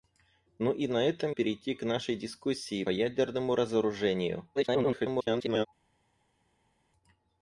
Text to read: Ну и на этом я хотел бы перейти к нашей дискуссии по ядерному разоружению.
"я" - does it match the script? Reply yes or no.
no